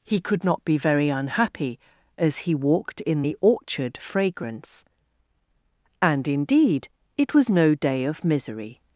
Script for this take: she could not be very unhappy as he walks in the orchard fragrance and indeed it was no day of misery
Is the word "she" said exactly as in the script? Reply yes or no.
no